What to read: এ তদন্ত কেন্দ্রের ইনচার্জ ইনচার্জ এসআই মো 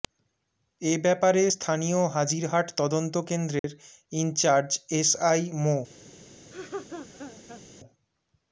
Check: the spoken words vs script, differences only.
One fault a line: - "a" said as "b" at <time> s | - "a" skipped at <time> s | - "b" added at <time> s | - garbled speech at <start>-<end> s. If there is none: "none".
- "ব্যাপারে স্থানীয় হাজিরহাট" added at 1.0 s
- "ইনচার্জ" skipped at 4.7 s